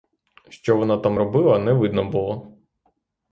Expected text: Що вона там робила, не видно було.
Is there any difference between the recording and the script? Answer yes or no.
no